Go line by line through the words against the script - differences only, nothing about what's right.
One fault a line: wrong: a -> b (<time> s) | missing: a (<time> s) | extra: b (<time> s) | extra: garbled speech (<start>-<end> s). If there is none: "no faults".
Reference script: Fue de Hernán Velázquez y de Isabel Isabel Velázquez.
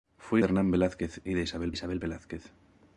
no faults